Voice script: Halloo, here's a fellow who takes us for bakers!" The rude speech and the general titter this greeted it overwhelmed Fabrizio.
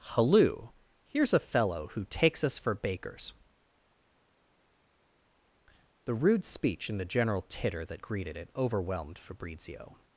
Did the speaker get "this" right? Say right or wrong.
wrong